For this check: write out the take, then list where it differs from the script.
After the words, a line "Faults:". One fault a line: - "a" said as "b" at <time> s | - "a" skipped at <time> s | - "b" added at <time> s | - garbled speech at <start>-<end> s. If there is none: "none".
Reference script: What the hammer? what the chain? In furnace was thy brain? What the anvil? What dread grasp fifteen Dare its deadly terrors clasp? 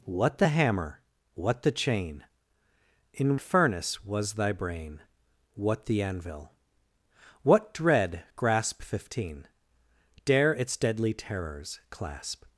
What the hammer? what the chain? In furnace was thy brain? What the anvil? What dread grasp fifteen Dare its deadly terrors clasp?
Faults:
none